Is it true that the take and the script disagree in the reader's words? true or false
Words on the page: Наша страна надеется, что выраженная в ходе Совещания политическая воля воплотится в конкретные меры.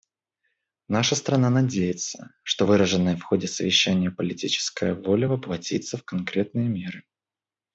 false